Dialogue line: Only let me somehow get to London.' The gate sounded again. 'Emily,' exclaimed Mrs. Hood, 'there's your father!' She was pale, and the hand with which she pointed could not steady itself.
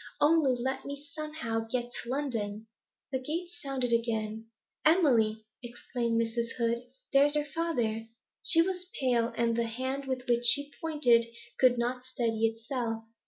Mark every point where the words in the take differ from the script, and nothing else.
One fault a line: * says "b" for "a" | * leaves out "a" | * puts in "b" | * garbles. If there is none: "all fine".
all fine